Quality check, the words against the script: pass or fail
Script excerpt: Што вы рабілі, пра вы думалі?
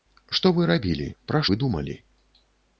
pass